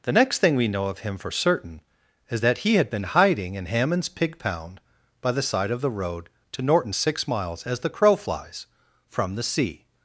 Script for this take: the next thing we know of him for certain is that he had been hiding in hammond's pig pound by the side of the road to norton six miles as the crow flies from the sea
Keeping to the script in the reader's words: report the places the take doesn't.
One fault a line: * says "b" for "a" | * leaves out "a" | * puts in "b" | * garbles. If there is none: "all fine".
all fine